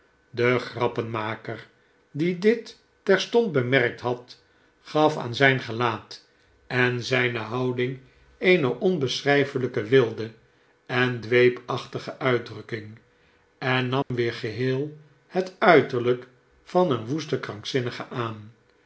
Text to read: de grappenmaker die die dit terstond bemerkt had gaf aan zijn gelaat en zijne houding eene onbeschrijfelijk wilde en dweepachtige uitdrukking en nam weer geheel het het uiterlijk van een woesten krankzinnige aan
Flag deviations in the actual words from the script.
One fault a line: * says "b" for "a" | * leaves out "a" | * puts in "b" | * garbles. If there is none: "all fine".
* leaves out "die"
* leaves out "het"